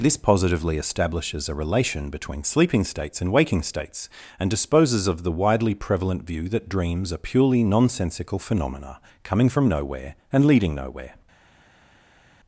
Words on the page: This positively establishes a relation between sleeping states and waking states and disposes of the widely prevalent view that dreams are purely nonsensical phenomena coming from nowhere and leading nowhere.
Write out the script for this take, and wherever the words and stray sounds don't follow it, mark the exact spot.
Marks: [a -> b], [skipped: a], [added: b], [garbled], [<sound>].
This positively establishes a relation between sleeping states and waking states and disposes of the widely prevalent view that dreams are purely nonsensical phenomena coming from nowhere and leading nowhere.